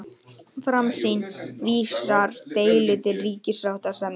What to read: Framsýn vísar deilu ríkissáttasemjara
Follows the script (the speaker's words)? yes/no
no